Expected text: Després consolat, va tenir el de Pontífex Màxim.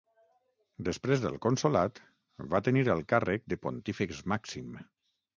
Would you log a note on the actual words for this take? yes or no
yes